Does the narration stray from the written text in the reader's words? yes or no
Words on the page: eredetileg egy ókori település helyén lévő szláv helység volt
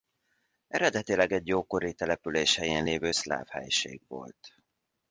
no